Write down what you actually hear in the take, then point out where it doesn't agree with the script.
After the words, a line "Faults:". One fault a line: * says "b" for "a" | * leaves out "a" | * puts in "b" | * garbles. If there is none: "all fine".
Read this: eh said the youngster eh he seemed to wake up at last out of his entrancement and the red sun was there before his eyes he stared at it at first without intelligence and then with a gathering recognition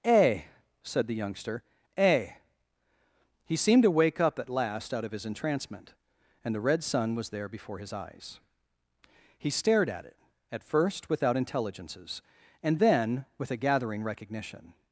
eh said the youngster eh he seemed to wake up at last out of his entrancement and the red sun was there before his eyes he stared at it at first without intelligences and then with a gathering recognition
Faults:
* says "intelligences" for "intelligence"